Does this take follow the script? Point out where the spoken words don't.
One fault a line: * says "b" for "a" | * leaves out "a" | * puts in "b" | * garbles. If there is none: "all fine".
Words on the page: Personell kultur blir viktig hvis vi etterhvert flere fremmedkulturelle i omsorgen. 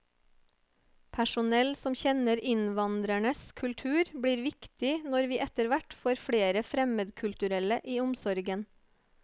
* puts in "som kjenner innvandrernes"
* says "når" for "hvis"
* puts in "får"